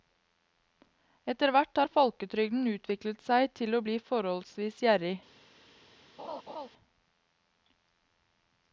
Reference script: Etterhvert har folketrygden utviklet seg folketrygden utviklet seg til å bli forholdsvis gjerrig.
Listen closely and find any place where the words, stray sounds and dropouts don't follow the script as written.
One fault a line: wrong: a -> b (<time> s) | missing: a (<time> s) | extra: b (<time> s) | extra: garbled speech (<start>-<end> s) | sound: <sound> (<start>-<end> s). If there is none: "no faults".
missing: folketrygden utviklet seg (3.5 s)
sound: laugh (6.2-6.7 s)